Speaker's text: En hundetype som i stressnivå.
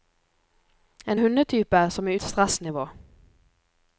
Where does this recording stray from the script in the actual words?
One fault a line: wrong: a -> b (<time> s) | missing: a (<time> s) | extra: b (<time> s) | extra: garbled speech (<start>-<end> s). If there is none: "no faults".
no faults